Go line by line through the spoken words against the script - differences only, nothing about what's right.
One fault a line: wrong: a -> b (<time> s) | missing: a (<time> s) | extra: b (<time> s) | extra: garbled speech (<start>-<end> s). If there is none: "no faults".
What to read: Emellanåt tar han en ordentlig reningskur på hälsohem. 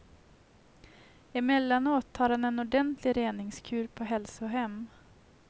no faults